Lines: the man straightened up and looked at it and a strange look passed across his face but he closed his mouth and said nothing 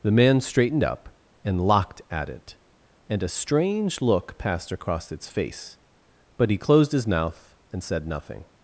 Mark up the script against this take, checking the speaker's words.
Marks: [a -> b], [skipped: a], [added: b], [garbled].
the man straightened up and [looked -> locked] at it and a strange look passed across [his -> its] face but he closed his mouth and said nothing